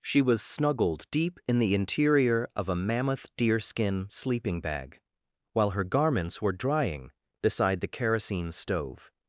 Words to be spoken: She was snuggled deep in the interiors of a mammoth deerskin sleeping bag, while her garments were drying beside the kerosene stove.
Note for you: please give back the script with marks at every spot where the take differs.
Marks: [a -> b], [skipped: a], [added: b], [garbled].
She was snuggled deep in the [interiors -> interior] of a mammoth deerskin sleeping bag, while her garments were drying beside the kerosene stove.